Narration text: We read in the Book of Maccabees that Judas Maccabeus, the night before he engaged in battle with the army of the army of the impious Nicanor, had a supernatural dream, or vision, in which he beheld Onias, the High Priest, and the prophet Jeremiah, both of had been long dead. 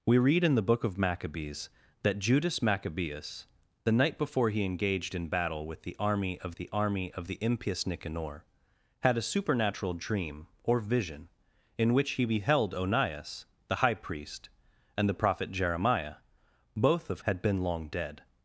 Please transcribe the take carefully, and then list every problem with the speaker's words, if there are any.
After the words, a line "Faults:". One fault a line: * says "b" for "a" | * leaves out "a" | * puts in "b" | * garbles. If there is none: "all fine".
We read in the Book of Maccabees that Judas Maccabeus, the night before he engaged in battle with the army of the army of the impious Nicanor, had a supernatural dream, or vision, in which he beheld Onias, the High Priest, and the prophet Jeremiah, both of had been long dead.
Faults:
all fine